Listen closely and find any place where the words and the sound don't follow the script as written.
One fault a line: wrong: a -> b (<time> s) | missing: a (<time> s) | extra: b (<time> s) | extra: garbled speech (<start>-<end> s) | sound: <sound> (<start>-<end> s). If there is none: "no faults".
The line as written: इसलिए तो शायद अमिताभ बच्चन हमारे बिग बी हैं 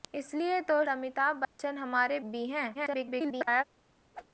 missing: शायद (0.8 s)
sound: dropout (1.4-1.6 s)
missing: बिग (2.2 s)
extra: garbled speech (2.7-3.6 s)
sound: whoosh (4.1-4.3 s)